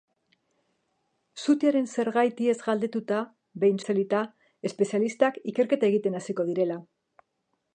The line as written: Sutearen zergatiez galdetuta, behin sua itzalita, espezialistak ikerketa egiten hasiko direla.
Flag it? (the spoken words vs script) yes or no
yes